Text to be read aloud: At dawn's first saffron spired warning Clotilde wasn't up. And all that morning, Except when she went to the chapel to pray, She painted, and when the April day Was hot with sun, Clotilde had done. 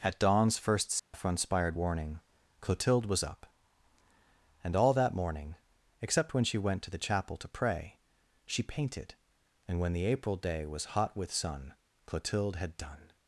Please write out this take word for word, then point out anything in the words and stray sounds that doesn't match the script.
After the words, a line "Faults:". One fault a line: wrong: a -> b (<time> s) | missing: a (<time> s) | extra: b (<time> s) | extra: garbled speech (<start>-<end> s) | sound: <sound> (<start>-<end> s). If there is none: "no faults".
At dawn's first saffron spired warning Clotilde was up. And all that morning, Except when she went to the chapel to pray, She painted, and when the April day Was hot with sun, Clotilde had done.
Faults:
sound: dropout (1.0-1.1 s)
wrong: wasn't -> was (3.1 s)